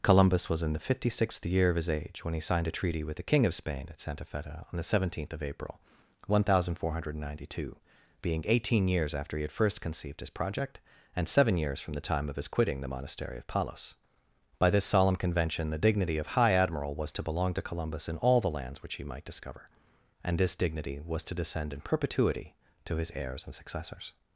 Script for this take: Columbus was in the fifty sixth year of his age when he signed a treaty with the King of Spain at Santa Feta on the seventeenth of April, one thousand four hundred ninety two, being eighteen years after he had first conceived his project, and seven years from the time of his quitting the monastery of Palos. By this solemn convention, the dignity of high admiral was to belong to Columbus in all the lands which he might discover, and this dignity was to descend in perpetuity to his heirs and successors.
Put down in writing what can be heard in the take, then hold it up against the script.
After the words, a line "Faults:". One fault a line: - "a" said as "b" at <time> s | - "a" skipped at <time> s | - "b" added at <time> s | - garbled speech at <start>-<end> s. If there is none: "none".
Columbus was in the fifty sixth year of his age when he signed a treaty with the King of Spain at Santa Feta on the seventeenth of April, one thousand four hundred ninety two, being eighteen years after he had first conceived his project, and seven years from the time of his quitting the monastery of Palos. By this solemn convention, the dignity of high admiral was to belong to Columbus in all the lands which he might discover, and this dignity was to descend in perpetuity to his heirs and successors.
Faults:
none